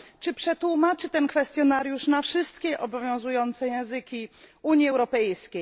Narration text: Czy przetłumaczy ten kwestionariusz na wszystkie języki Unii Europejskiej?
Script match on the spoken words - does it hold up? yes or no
no